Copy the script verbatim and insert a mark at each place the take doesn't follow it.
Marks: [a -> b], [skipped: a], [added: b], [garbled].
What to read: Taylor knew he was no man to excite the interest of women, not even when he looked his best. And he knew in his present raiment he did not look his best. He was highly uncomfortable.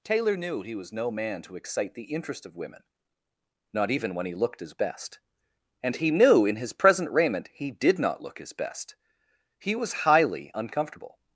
Taylor knew he was no man to excite the interest of women, not even when he looked his best. And he knew in his present raiment he did not look his best. He was highly uncomfortable.